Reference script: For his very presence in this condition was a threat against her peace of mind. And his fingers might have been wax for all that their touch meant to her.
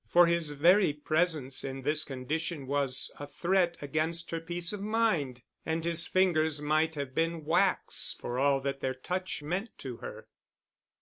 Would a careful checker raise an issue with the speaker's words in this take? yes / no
no